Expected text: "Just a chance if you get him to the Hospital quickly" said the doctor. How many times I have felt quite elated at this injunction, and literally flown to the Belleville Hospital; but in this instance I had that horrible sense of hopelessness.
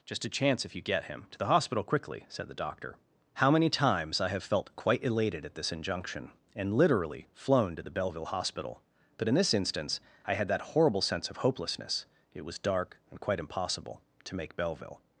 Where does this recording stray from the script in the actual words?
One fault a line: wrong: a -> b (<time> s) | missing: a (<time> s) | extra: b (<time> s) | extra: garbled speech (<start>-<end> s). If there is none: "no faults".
extra: It was dark and quite impossible to make Belleville (12.3 s)